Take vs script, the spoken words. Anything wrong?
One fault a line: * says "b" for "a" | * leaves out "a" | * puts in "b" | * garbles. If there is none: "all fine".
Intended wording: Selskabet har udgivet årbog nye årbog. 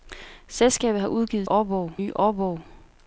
all fine